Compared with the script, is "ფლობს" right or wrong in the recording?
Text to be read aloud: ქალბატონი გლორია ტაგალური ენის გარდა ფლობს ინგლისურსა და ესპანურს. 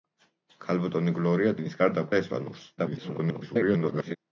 wrong